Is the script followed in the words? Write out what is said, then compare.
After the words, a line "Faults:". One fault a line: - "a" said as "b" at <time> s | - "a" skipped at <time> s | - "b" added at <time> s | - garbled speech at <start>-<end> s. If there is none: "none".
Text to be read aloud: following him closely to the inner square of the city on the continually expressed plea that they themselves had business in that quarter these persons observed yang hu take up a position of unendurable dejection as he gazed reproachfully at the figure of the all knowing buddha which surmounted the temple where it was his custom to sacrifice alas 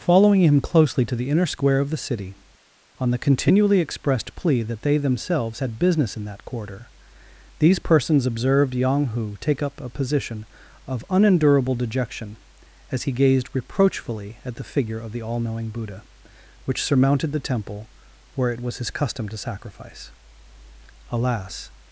following him closely to the inner square of the city on the continually expressed plea that they themselves had business in that quarter these persons observed yang hu take up a position of unendurable dejection as he gazed reproachfully at the figure of the all knowing buddha which surmounted the temple where it was his custom to sacrifice alas
Faults:
none